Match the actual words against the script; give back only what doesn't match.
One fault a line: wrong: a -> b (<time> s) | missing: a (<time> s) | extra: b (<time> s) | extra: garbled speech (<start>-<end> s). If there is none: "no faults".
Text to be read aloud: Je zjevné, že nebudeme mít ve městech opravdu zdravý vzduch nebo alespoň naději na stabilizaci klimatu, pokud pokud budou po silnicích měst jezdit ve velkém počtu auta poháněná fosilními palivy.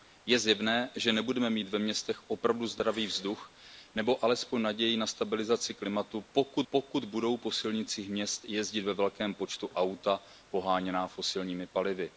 no faults